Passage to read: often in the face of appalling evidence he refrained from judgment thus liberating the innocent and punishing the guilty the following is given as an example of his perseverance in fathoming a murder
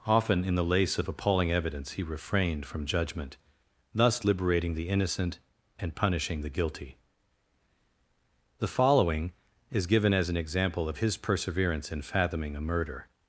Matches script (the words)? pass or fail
fail